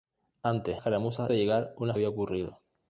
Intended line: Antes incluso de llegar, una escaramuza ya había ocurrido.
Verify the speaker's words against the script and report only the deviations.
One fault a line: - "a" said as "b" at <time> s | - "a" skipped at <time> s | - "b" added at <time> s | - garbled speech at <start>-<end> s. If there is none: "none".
- "incluso" said as "escaramuza" at 0.7 s
- "escaramuza ya" skipped at 1.9 s